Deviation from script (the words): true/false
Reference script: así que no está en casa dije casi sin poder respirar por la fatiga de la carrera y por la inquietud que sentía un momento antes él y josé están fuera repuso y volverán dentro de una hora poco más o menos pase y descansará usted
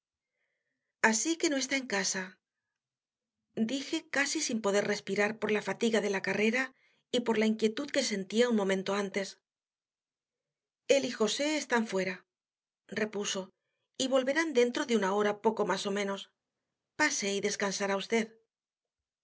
false